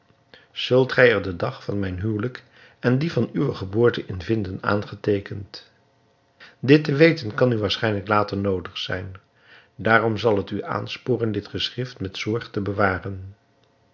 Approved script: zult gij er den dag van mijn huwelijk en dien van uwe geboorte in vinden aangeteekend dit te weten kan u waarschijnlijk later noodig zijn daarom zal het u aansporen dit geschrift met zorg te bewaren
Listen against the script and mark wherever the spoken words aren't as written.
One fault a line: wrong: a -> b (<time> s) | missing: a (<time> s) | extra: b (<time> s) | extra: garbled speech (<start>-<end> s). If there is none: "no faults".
no faults